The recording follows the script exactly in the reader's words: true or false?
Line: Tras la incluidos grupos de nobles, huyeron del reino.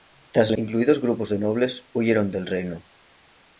true